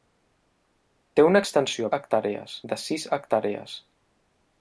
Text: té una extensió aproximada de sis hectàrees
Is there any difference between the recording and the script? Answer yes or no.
yes